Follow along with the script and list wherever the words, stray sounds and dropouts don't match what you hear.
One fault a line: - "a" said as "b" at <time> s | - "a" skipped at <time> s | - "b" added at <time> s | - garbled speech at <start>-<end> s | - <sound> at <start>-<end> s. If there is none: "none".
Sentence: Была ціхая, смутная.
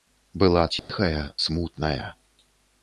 - dropout at 0.8-0.9 s